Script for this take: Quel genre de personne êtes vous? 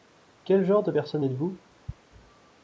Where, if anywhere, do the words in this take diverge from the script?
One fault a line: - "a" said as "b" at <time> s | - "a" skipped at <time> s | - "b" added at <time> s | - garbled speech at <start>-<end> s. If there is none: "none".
none